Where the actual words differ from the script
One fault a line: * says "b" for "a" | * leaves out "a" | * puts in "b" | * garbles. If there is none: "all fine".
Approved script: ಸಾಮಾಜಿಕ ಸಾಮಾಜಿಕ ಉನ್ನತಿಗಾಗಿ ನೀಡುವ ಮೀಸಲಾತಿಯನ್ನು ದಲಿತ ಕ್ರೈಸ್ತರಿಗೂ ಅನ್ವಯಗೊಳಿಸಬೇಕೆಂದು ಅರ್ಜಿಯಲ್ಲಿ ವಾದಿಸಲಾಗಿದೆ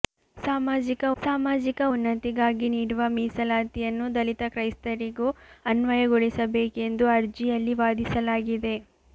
all fine